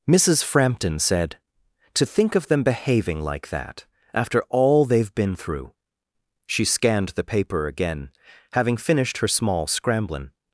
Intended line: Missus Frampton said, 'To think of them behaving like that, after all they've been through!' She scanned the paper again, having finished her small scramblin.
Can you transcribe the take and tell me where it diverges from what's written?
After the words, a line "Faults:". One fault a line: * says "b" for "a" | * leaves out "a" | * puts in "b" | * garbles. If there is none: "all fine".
Missus Frampton said, 'To think of them behaving like that, after all they've been through!' She scanned the paper again, having finished her small scramblin.
Faults:
all fine